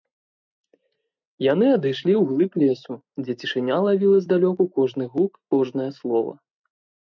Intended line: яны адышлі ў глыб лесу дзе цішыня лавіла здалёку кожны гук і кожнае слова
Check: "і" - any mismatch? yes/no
yes